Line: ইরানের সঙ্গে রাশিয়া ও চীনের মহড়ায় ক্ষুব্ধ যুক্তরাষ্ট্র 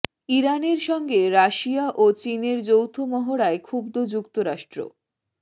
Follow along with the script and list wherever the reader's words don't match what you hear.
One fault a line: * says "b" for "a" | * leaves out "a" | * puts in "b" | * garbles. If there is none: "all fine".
* puts in "যৌথ"